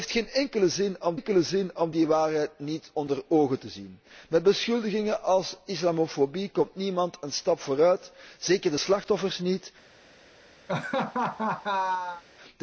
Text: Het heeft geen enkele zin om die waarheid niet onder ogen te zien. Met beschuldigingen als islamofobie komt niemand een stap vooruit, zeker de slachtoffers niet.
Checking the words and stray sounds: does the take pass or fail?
fail